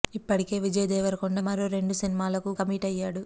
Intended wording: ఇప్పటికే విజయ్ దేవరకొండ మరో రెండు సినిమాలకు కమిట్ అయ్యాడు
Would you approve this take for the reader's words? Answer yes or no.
yes